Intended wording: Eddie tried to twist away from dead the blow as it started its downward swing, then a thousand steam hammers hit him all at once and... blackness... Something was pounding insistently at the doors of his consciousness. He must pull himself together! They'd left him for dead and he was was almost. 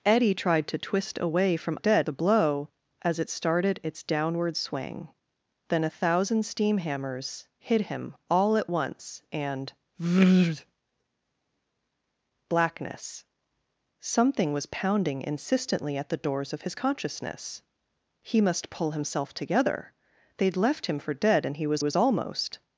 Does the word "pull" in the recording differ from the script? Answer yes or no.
no